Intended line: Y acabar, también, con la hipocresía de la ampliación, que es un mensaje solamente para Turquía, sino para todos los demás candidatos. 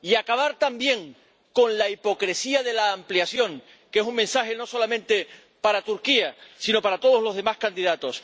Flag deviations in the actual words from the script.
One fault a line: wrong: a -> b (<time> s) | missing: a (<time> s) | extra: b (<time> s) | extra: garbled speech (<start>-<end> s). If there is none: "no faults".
extra: no (4.5 s)